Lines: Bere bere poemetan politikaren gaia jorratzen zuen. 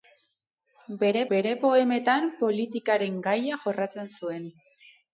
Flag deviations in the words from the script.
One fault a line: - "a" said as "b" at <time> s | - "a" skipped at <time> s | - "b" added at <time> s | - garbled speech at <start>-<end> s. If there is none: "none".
none